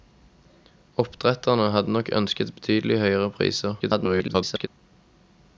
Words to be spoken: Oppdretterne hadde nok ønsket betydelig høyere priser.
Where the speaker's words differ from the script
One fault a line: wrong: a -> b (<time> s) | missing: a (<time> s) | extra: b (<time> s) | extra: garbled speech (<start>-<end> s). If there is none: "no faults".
extra: garbled speech (3.8-4.7 s)